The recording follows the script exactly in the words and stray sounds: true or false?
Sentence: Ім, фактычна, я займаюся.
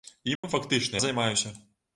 false